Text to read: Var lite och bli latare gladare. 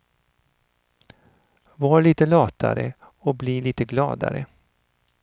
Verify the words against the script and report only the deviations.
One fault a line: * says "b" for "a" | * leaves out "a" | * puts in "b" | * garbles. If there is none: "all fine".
* puts in "latare"
* says "lite" for "latare"